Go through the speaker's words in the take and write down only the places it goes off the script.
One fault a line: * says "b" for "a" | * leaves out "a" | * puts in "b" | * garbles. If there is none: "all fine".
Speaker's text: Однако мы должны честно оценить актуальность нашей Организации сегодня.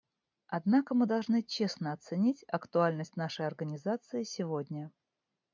all fine